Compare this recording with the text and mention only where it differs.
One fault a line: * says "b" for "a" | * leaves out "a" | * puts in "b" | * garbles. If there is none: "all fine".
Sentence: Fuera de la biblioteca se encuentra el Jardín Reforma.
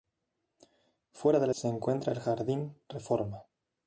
* leaves out "biblioteca"